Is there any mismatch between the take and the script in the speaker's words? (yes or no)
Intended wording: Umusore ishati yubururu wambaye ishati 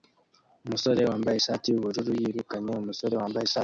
yes